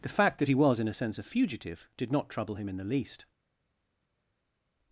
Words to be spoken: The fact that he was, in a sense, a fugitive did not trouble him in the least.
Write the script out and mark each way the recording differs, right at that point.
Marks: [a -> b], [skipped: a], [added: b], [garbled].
The fact that he was, in a sense, a fugitive did not trouble him in the least.